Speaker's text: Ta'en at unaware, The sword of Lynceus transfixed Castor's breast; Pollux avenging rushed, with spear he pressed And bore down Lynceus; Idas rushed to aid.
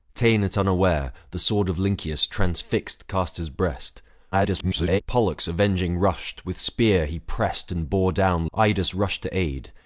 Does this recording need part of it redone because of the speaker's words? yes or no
yes